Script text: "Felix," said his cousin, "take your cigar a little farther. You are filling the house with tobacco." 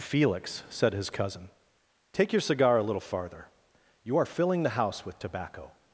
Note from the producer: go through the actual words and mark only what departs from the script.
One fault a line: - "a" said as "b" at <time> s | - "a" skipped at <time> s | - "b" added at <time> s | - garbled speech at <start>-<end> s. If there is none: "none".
none